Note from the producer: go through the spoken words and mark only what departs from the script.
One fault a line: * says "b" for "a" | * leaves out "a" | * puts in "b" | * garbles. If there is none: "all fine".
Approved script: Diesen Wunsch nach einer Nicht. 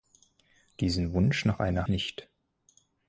all fine